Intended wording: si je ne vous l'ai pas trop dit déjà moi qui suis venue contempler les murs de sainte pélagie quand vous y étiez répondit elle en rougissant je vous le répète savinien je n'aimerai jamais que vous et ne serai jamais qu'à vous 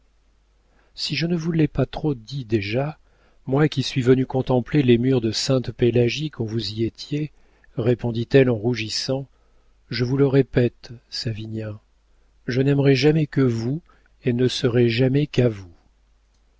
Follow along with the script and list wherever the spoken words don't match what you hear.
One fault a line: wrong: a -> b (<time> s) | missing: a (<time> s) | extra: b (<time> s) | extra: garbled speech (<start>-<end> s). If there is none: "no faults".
no faults